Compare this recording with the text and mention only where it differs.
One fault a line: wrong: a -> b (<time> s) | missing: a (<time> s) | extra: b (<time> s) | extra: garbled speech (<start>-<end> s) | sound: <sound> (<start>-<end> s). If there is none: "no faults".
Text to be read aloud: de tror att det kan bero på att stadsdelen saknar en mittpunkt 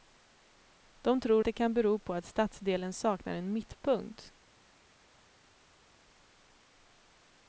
missing: att (1.4 s)